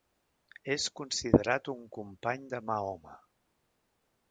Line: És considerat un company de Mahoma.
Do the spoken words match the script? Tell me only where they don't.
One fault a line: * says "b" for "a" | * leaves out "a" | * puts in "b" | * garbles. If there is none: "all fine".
all fine